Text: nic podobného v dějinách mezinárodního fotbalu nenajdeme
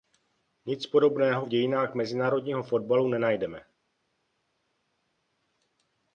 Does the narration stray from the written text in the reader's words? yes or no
no